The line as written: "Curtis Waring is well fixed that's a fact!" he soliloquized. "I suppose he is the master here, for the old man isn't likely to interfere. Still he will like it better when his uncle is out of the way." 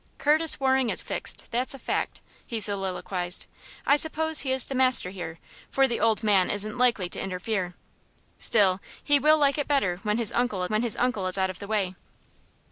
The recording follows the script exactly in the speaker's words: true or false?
false